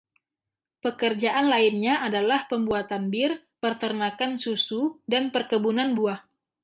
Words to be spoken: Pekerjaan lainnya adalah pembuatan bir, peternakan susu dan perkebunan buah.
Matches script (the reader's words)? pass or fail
pass